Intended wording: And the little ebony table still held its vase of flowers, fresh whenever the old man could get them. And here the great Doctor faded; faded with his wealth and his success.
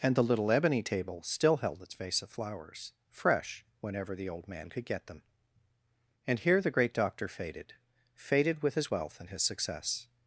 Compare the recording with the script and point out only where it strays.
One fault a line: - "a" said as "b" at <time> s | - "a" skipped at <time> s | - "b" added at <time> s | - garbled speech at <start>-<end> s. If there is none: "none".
none